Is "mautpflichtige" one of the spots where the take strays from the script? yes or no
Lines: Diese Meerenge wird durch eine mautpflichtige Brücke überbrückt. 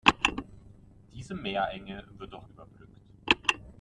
yes